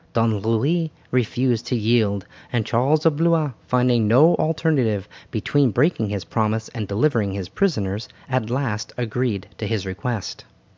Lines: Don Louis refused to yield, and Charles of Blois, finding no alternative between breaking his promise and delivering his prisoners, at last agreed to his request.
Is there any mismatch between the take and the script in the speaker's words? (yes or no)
no